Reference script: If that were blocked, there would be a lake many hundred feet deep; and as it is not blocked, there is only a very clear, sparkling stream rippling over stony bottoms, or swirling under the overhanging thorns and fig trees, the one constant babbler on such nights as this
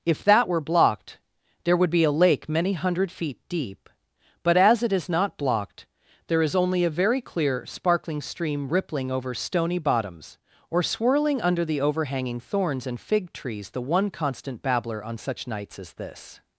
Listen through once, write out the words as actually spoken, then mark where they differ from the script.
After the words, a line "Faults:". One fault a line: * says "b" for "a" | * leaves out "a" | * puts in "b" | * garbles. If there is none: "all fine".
If that were blocked, there would be a lake many hundred feet deep; but as it is not blocked, there is only a very clear, sparkling stream rippling over stony bottoms, or swirling under the overhanging thorns and fig trees, the one constant babbler on such nights as this
Faults:
* says "but" for "and"